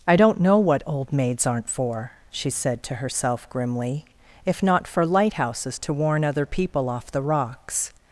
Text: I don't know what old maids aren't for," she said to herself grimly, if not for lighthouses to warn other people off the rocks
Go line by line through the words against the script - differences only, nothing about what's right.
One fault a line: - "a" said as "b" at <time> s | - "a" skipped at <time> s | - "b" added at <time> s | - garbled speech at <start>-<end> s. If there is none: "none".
none